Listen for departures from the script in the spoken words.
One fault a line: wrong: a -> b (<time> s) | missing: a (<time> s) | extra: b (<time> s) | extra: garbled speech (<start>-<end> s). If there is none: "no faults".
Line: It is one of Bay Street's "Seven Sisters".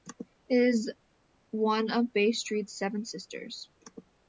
no faults